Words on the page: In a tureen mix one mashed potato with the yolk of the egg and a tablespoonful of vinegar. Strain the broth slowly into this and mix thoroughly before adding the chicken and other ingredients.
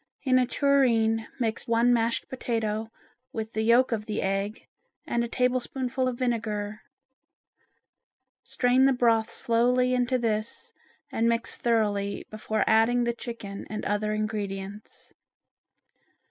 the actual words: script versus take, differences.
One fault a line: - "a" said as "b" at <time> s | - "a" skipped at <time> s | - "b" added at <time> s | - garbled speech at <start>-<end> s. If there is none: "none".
none